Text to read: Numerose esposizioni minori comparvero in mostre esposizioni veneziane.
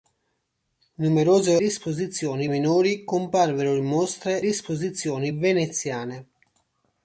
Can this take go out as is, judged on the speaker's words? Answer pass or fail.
pass